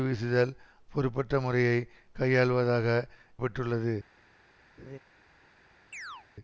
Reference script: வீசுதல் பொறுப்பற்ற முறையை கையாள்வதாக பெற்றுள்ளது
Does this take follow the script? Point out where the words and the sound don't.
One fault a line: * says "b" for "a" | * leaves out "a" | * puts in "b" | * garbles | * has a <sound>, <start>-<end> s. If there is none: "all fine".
* has a laugh, 4.8-5.0 s
* has a chirp, 5.9-6.3 s